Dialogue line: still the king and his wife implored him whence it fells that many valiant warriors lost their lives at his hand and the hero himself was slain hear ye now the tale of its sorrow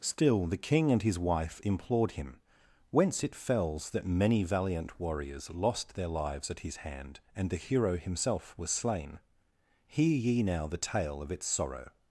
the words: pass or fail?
pass